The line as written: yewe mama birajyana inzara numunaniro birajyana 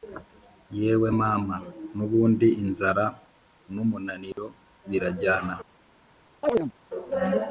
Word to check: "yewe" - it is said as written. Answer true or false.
true